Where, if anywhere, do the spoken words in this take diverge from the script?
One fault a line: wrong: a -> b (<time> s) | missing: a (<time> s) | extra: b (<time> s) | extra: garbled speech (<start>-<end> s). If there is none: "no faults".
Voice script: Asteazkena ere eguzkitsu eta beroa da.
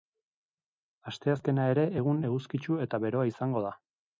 extra: egun (2.0 s)
extra: izango (3.3 s)